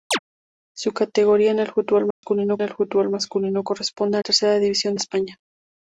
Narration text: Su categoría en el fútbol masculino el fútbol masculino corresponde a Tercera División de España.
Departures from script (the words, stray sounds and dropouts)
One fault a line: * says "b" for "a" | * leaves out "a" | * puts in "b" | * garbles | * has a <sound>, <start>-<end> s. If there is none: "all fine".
* has a chirp, 0.1-0.2 s
* has a dropout, 2.1-2.2 s